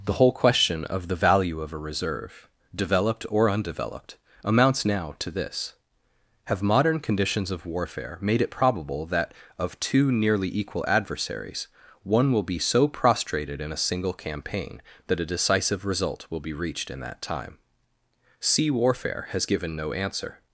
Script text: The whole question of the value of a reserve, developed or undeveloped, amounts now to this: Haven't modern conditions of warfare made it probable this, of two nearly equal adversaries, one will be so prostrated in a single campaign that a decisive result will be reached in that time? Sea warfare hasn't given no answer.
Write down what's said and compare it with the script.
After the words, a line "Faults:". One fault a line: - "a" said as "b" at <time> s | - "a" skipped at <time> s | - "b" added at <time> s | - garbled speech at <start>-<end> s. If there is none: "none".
The whole question of the value of a reserve, developed or undeveloped, amounts now to this: Have modern conditions of warfare made it probable that, of two nearly equal adversaries, one will be so prostrated in a single campaign that a decisive result will be reached in that time? Sea warfare has given no answer.
Faults:
- "Haven't" said as "Have" at 6.5 s
- "this" said as "that" at 9.1 s
- "hasn't" said as "has" at 19.3 s